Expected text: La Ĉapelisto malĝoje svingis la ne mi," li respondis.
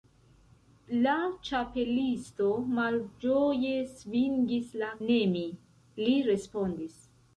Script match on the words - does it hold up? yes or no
yes